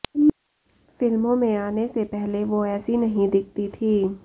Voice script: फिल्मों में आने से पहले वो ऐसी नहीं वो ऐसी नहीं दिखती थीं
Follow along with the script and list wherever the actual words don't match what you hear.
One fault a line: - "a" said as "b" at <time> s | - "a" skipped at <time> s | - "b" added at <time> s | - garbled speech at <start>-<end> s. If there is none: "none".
- "वो ऐसी नहीं" skipped at 3.3 s